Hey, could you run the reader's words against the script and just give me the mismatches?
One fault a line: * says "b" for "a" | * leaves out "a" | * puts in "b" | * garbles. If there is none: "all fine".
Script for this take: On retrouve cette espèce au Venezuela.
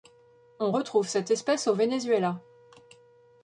all fine